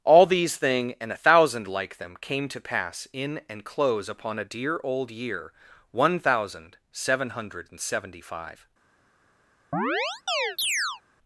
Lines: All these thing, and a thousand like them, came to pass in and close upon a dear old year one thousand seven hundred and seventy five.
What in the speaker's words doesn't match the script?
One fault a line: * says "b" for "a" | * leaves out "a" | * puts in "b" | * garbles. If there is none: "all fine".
all fine